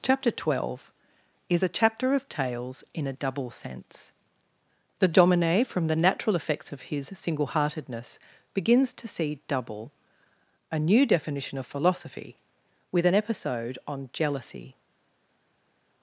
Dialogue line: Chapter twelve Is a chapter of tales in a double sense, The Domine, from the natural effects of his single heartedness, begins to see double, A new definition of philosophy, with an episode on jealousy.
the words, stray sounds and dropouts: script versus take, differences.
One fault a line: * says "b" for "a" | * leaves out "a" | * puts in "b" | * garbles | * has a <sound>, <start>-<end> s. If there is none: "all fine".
all fine